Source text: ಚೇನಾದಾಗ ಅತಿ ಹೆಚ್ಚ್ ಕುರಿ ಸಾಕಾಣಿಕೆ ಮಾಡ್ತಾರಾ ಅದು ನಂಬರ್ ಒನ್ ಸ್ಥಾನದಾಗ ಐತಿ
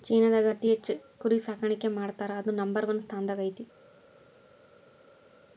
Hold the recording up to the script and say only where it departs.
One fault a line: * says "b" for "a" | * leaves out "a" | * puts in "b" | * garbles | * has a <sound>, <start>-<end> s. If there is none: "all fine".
all fine